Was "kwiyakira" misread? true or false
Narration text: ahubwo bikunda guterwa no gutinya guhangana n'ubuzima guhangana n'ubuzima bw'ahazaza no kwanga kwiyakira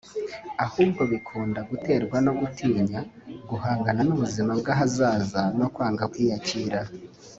false